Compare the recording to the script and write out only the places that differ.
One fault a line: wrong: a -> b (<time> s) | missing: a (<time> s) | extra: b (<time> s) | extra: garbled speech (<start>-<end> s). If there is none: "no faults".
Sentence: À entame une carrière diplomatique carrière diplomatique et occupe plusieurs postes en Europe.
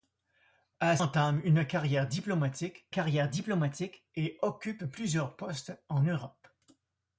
no faults